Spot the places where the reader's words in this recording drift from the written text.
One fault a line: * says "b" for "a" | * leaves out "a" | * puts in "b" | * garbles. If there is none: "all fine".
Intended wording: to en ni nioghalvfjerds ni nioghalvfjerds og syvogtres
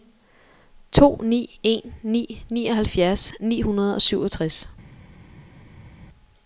* puts in "ni"
* says "hundrede" for "nioghalvfjerds"